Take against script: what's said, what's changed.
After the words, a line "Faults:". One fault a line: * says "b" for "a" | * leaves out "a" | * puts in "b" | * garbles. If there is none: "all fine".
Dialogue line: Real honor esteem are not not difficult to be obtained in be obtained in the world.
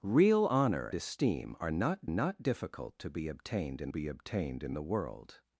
Real honor esteem are not not difficult to be obtained in be obtained in the world.
Faults:
all fine